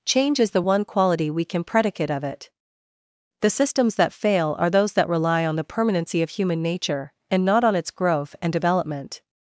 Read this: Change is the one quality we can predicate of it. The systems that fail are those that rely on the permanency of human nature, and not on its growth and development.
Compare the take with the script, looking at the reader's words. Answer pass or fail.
pass